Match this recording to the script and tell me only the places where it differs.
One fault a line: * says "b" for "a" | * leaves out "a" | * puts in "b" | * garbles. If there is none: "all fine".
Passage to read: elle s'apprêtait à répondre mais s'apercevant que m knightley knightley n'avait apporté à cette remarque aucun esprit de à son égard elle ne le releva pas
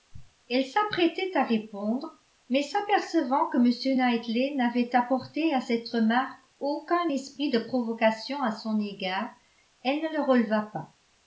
* leaves out "knightley"
* puts in "provocation"